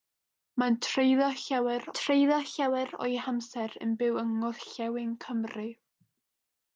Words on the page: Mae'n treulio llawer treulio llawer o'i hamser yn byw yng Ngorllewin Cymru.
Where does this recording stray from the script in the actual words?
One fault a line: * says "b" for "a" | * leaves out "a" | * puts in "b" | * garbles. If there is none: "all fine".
all fine